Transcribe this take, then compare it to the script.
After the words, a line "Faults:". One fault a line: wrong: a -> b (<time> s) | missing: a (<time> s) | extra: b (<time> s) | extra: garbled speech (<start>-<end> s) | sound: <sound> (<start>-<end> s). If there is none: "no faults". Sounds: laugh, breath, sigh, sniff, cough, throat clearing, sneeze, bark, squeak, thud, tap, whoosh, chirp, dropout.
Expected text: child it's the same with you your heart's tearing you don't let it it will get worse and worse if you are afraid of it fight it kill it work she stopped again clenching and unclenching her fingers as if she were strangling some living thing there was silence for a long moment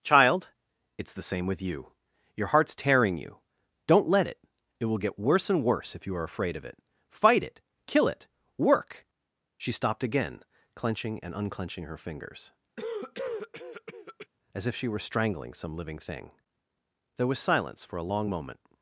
child it's the same with you your heart's tearing you don't let it it will get worse and worse if you are afraid of it fight it kill it work she stopped again clenching and unclenching her fingers as if she were strangling some living thing there was silence for a long moment
Faults:
sound: cough (12.8-14.3 s)